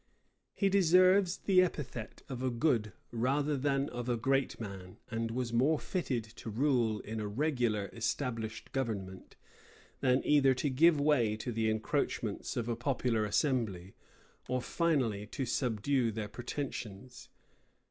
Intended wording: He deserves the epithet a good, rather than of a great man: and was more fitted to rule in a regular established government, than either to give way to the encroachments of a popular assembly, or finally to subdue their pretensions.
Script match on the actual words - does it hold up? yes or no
no